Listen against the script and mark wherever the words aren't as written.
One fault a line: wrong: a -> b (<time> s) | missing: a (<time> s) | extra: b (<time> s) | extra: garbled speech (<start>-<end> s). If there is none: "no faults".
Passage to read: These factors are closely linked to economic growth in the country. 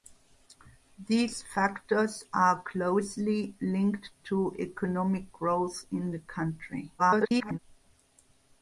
extra: garbled speech (7.0-7.6 s)